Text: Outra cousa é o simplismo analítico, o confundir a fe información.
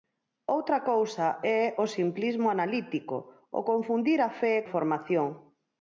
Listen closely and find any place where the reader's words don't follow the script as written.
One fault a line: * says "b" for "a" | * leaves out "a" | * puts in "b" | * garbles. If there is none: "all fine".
all fine